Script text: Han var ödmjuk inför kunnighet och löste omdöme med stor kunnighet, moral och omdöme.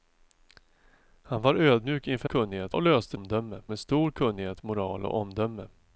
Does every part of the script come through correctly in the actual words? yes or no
yes